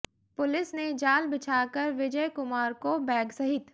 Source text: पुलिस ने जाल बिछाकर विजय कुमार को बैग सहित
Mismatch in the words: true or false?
false